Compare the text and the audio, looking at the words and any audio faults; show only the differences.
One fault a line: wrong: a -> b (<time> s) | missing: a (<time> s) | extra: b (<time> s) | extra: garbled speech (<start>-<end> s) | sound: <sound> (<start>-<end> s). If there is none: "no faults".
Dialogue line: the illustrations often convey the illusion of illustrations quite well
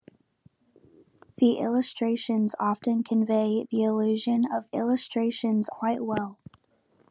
no faults